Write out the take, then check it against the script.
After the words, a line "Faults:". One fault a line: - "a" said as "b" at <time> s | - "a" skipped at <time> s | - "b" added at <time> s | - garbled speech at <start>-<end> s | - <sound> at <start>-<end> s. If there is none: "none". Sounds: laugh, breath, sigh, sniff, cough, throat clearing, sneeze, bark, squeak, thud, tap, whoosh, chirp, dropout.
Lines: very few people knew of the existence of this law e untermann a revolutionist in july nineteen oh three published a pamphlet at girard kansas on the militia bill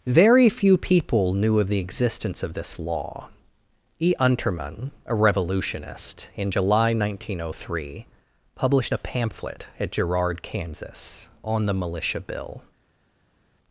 very few people knew of the existence of this law e untermann a revolutionist in july nineteen oh three published a pamphlet at girard kansas on the militia bill
Faults:
none